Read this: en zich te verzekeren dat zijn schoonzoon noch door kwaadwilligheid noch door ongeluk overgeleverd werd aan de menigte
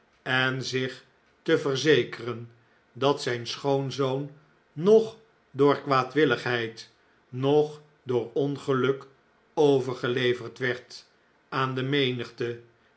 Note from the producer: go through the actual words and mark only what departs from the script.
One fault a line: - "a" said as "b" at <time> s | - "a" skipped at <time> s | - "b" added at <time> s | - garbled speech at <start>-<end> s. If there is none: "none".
none